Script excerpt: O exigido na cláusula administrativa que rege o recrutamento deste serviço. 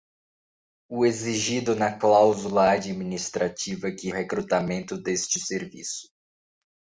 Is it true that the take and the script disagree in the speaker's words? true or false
true